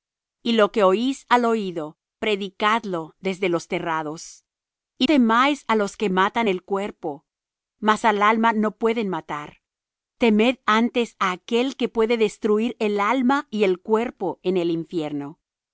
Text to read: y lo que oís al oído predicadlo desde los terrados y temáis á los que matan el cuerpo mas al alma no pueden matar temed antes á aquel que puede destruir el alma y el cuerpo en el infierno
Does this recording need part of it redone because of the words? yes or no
no